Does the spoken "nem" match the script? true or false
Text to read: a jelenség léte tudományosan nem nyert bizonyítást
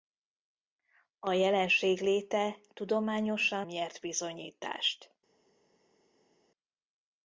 false